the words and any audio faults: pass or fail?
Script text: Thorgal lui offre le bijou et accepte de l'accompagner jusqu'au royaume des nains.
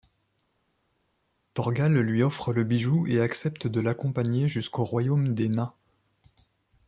pass